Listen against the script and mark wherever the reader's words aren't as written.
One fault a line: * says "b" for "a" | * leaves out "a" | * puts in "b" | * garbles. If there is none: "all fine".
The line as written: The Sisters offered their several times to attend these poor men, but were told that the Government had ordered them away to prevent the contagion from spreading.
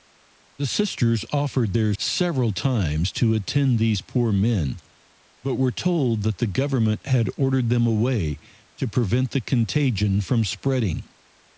all fine